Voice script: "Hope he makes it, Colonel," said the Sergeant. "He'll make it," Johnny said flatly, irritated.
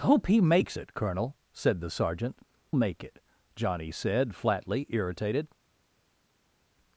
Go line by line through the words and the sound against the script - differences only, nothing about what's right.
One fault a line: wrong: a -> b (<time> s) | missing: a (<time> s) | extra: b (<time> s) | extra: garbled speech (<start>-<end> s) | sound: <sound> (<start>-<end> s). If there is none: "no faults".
missing: He'll (2.4 s)